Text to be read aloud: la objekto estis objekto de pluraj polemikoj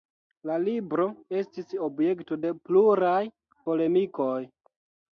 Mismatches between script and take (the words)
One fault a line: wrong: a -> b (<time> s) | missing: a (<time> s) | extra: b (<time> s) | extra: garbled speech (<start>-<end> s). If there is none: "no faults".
wrong: objekto -> libro (0.6 s)